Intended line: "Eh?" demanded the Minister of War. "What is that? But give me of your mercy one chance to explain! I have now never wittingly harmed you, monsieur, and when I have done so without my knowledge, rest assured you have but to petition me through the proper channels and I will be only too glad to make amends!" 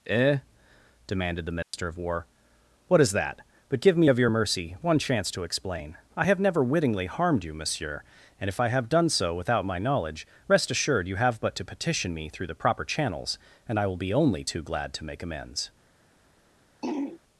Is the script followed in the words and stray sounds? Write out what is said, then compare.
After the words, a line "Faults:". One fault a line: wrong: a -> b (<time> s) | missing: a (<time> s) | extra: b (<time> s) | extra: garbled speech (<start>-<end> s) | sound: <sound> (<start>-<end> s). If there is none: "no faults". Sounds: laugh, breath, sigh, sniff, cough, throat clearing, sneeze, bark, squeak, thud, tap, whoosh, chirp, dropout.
"Eh?" demanded the Minister of War. "What is that? But give me of your mercy one chance to explain! I have never wittingly harmed you, monsieur, and if I have done so without my knowledge, rest assured you have but to petition me through the proper channels and I will be only too glad to make amends!"
Faults:
sound: dropout (1.6-1.7 s)
missing: now (6.4 s)
wrong: when -> if (8.5 s)
sound: throat clearing (16.8-17.2 s)